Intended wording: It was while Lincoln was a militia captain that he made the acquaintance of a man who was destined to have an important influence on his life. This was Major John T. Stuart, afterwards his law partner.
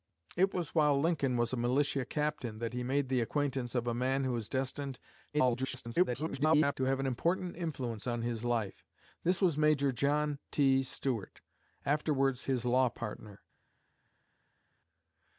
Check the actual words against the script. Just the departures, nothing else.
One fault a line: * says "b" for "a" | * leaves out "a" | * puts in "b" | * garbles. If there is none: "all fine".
* garbles